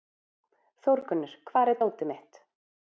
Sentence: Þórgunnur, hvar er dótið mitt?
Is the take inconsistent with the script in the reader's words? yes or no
no